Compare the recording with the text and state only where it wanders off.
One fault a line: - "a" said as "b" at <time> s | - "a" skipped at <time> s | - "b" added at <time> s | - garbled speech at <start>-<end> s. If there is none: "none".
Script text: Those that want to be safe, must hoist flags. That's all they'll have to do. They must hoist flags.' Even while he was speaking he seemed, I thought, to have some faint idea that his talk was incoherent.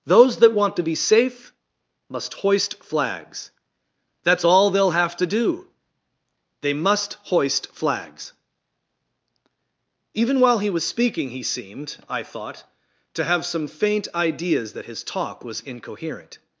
- "idea" said as "ideas" at 14.1 s